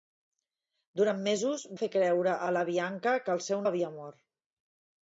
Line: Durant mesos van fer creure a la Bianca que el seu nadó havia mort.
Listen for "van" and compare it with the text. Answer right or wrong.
wrong